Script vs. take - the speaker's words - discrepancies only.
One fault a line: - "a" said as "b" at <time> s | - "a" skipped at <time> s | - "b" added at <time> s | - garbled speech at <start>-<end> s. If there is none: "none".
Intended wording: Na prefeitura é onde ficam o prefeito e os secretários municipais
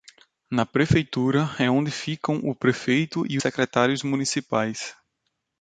- "os" skipped at 3.4 s